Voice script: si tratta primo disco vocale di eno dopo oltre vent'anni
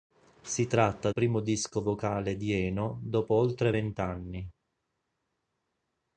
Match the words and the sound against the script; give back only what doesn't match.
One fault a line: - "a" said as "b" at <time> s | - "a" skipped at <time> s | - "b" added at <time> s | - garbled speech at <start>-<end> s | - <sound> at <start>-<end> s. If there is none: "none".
none